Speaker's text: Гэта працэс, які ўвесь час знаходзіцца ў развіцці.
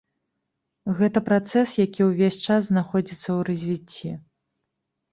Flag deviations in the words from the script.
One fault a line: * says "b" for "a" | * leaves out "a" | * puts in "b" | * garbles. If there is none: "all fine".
all fine